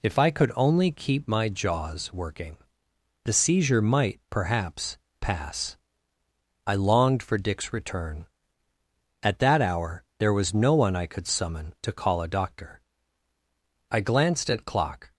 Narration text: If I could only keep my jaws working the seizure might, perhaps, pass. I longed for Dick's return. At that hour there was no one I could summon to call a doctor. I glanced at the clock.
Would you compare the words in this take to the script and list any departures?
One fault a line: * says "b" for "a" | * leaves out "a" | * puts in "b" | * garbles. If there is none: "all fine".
* leaves out "the"